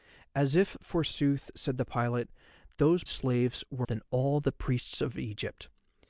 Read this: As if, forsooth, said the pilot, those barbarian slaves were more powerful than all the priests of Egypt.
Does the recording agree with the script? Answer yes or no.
no